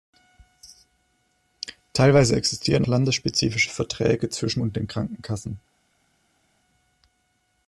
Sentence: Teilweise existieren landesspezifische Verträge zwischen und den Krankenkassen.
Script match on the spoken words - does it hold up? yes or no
yes